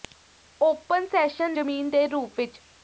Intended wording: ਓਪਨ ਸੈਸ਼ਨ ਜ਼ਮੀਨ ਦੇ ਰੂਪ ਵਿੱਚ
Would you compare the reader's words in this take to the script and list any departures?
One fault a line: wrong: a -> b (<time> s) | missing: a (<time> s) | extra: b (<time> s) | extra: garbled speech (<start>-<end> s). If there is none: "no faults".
no faults